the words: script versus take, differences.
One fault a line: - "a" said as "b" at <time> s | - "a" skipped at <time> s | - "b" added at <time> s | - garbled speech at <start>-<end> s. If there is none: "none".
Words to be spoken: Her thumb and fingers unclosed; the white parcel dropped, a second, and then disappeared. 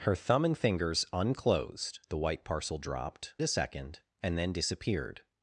none